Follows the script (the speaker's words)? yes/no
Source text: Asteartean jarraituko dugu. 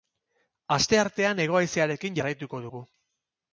no